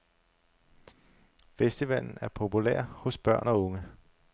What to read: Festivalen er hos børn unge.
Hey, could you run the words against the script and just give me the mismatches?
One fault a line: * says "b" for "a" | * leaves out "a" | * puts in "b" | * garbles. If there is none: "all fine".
* puts in "populær"
* puts in "og"